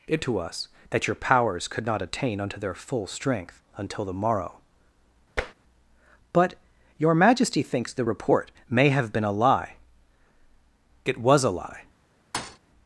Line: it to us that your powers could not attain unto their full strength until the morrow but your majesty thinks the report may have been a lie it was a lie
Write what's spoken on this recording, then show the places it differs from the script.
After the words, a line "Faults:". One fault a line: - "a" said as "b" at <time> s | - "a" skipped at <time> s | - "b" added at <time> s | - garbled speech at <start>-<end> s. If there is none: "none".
it to us that your powers could not attain unto their full strength until the morrow but your majesty thinks the report may have been a lie it was a lie
Faults:
none